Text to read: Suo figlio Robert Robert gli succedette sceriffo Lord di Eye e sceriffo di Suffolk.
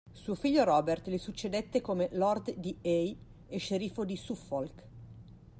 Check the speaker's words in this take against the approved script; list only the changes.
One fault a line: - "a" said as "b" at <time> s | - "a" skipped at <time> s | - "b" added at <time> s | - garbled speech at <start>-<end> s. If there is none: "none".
- "Robert" skipped at 1.1 s
- "sceriffo" said as "come" at 1.8 s